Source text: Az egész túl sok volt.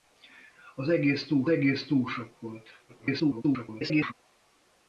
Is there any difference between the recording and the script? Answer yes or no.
yes